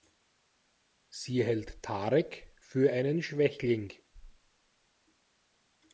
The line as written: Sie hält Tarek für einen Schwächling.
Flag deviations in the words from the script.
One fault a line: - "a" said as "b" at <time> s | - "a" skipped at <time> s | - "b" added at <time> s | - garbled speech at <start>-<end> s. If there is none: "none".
none